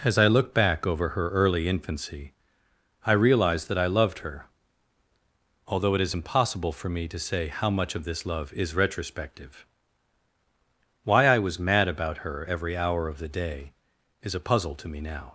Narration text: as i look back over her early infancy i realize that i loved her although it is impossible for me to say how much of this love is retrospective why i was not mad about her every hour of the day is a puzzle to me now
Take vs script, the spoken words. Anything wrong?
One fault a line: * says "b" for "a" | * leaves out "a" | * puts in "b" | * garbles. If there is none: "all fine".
* leaves out "not"